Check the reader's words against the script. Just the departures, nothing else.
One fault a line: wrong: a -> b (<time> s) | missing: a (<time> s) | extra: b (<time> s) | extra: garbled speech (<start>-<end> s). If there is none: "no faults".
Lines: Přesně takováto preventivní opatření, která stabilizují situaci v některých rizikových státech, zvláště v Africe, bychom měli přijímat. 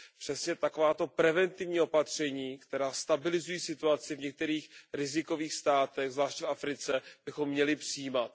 no faults